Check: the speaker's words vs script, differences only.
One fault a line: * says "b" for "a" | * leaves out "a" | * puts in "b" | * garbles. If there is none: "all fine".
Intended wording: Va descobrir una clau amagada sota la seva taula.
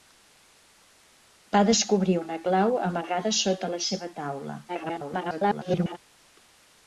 * garbles